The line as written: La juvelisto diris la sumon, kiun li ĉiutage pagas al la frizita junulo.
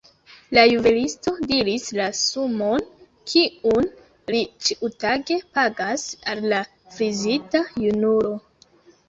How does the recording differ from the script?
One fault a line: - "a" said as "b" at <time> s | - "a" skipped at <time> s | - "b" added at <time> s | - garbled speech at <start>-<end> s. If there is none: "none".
none